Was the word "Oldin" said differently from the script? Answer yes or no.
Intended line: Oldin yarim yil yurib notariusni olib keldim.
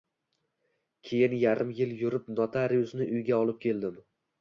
yes